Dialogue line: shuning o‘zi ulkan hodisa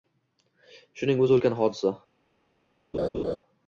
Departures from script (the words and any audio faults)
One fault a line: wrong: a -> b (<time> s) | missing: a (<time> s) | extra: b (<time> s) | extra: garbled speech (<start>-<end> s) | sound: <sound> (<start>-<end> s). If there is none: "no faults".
sound: laugh (2.9-3.4 s)